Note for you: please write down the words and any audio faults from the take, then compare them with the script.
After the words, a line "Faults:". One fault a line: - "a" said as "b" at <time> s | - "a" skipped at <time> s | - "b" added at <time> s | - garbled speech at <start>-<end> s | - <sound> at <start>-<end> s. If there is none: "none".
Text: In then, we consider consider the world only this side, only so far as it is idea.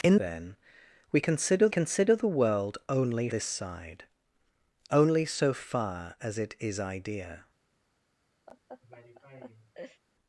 In then, we consider consider the world only this side, only so far as it is idea.
Faults:
- laugh at 8.5-10.0 s